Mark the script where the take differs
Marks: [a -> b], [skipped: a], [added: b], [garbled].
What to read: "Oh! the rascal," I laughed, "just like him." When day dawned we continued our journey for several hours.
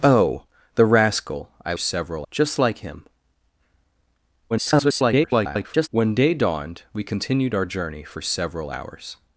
"Oh! the rascal," I [laughed, -> several] "just like him." [garbled] When day dawned we continued our journey for several hours.